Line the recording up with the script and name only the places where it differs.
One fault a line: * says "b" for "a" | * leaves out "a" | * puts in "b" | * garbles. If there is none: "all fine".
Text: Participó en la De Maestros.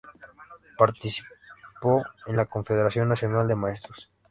* puts in "Confederación Nacional"